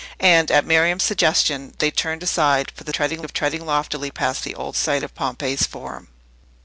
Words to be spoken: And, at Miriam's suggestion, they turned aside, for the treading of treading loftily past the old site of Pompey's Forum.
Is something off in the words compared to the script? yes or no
no